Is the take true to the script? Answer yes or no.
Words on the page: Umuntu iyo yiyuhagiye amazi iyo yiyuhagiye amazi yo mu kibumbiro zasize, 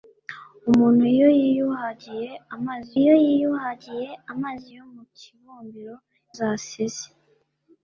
yes